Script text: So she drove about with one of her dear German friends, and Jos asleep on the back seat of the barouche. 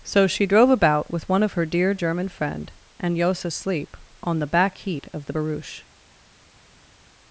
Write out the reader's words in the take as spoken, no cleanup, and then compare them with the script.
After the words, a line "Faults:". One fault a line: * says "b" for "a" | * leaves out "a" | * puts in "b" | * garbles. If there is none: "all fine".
So she drove about with one of her dear German friend, and Jos asleep on the back heat of the barouche.
Faults:
* says "friend" for "friends"
* says "heat" for "seat"